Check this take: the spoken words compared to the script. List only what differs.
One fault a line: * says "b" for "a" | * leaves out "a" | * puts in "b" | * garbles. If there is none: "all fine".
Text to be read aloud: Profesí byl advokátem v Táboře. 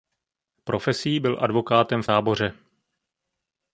all fine